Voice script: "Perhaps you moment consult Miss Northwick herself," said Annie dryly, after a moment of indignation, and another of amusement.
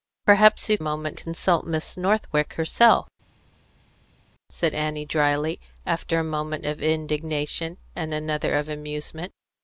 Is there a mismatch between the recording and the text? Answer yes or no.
no